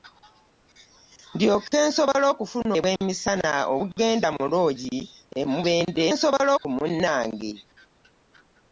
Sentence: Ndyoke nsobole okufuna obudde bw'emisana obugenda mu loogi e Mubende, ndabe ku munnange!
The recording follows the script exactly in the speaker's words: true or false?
false